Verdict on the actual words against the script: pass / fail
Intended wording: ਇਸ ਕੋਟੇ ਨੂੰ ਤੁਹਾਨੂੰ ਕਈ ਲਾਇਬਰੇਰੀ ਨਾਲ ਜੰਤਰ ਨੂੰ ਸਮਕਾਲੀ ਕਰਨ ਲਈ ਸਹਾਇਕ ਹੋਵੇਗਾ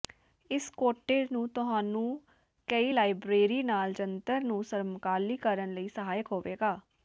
pass